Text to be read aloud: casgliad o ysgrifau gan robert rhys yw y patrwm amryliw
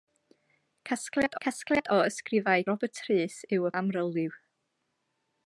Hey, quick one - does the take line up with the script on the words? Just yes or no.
no